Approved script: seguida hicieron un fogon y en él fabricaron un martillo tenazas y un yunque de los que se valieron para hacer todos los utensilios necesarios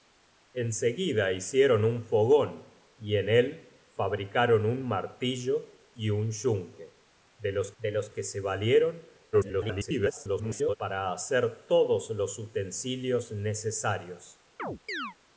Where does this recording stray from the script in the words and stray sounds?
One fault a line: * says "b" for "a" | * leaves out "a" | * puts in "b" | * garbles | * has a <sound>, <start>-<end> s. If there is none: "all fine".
* leaves out "tenazas"
* puts in "de los"
* garbles
* has a chirp, 14.6-15.2 s